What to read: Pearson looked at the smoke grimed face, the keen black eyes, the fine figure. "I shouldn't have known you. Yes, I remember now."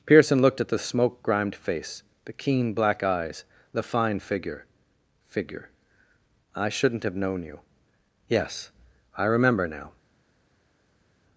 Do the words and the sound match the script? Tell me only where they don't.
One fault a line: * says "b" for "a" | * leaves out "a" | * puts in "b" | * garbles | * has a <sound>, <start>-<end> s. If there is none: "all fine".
* puts in "figure"